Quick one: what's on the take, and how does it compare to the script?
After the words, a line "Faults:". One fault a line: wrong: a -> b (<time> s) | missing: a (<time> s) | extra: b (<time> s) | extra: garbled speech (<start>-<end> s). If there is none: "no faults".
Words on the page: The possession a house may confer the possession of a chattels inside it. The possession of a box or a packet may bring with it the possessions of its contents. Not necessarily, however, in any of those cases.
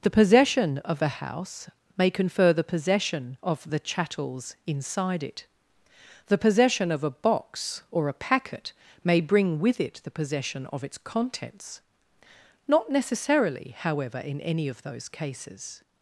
The possession of a house may confer the possession of the chattels inside it. The possession of a box or a packet may bring with it the possession of its contents. Not necessarily, however, in any of those cases.
Faults:
extra: of (0.8 s)
wrong: a -> the (3.7 s)
wrong: possessions -> possession (10.1 s)